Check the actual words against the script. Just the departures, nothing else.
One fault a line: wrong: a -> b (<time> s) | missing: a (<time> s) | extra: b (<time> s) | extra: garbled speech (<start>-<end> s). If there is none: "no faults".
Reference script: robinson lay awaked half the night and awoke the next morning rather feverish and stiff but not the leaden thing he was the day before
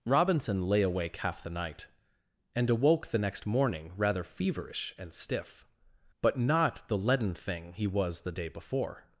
wrong: awaked -> awake (0.8 s)